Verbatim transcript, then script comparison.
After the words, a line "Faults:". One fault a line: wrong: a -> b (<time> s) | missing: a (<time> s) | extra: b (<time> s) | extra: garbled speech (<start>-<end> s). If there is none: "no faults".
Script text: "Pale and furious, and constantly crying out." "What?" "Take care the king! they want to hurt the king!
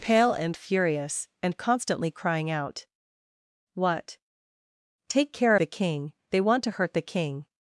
"Pale and furious, and constantly crying out." "What?" "Take care the king! they want to hurt the king!
Faults:
no faults